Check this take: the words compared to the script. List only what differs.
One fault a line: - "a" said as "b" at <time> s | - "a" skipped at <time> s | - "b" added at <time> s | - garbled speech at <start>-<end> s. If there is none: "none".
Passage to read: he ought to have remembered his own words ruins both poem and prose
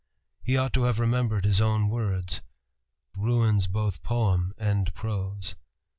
none